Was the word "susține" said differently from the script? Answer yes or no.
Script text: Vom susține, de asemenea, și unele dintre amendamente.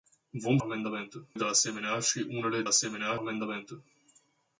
yes